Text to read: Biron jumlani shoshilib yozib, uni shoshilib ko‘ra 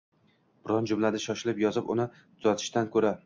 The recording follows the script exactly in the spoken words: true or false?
false